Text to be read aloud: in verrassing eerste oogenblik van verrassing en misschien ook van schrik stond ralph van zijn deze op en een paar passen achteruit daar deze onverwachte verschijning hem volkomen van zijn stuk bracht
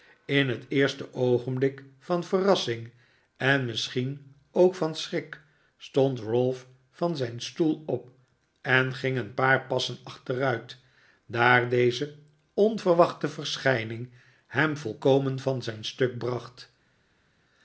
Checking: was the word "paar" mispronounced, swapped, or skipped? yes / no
no